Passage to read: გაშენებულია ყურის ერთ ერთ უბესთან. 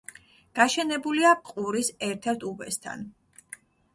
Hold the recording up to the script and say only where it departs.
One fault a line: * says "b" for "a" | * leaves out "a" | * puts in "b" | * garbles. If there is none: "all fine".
all fine